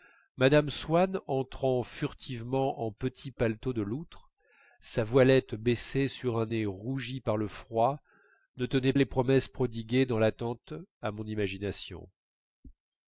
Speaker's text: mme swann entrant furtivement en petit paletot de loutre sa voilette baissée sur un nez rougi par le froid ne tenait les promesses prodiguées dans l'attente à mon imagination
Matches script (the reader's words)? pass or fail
pass